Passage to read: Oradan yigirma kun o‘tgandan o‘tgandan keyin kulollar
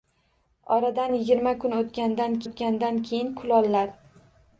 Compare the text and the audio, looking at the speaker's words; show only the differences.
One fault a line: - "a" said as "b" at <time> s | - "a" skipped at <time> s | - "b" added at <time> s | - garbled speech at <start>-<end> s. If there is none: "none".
none